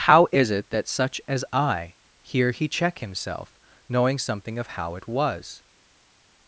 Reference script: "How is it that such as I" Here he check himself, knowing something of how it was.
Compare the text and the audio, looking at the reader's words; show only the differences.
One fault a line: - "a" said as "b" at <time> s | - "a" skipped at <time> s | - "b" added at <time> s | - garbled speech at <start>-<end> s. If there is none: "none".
none